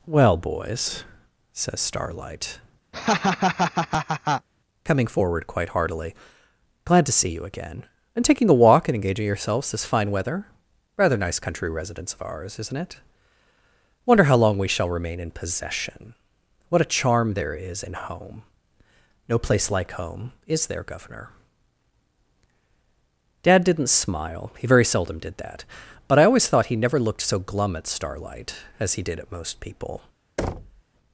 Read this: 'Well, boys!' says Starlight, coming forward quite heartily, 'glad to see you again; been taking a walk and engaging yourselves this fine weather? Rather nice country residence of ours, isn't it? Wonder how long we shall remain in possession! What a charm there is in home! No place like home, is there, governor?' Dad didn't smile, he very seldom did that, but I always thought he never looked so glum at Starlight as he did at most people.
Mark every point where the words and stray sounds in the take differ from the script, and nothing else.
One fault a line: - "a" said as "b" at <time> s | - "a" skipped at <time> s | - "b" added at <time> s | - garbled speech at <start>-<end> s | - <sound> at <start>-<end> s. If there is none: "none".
- laugh at 2.9-4.5 s
- "been" said as "and" at 8.1 s
- thud at 30.4-30.8 s